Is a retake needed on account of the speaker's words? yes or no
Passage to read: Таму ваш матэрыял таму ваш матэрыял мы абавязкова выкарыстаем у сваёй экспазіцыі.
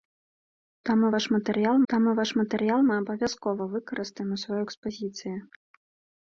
no